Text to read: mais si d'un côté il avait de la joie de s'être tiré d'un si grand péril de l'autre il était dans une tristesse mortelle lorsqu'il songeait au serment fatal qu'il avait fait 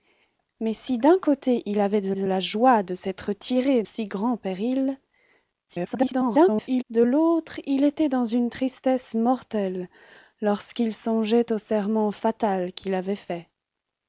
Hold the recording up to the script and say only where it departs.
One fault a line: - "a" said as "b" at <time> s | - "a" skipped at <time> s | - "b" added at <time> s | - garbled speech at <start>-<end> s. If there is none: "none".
- "de" added at 2.1 s
- "d'un" skipped at 3.8 s
- garbled speech at 5.7-6.8 s